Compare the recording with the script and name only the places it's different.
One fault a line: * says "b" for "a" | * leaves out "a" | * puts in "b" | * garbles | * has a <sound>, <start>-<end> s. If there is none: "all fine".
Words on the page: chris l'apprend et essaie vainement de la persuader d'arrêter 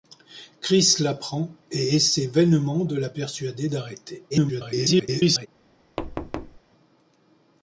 * garbles
* has a thud, 6.0-6.6 s